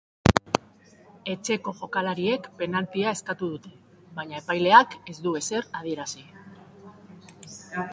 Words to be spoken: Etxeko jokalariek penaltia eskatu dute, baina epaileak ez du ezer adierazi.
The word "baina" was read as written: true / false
true